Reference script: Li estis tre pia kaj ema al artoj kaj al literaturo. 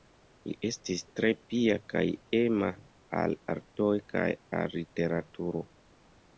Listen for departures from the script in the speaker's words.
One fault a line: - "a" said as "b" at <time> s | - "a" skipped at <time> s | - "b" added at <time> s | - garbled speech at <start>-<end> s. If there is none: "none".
none